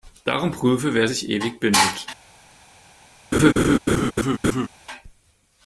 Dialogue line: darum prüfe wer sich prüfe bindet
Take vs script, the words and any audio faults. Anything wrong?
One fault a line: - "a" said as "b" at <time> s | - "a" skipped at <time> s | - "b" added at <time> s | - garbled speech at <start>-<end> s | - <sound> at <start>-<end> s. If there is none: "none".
- "prüfe" said as "ewig" at 1.3 s
- laugh at 3.3-4.7 s